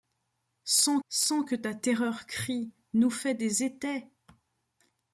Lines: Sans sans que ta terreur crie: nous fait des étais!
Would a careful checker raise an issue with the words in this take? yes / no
no